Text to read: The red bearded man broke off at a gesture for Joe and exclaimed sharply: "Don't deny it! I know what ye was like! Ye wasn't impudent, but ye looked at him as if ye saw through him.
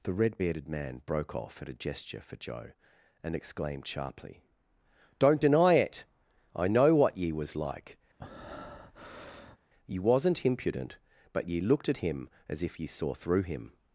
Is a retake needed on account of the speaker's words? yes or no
no